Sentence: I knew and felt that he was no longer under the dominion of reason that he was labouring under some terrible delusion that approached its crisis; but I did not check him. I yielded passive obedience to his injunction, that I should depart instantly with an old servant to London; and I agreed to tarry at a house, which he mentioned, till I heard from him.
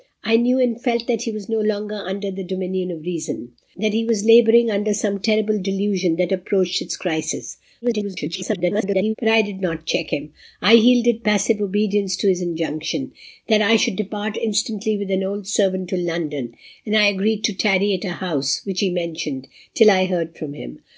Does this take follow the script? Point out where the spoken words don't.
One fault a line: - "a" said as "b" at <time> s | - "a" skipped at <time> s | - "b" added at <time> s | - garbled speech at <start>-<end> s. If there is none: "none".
- garbled speech at 7.8-9.1 s